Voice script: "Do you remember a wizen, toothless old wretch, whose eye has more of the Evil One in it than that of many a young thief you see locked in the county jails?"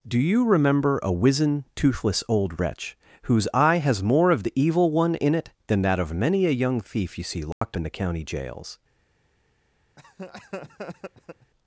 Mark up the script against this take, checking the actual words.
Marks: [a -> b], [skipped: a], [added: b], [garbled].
"Do you remember a wizen, toothless old wretch, whose eye has more of the Evil One in it than that of many a young thief you see locked in the county jails?"